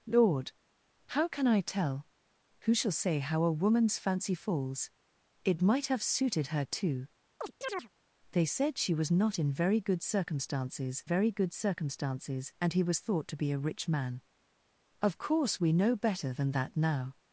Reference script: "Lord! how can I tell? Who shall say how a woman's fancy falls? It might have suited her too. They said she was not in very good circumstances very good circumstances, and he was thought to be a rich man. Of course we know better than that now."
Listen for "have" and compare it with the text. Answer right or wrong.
right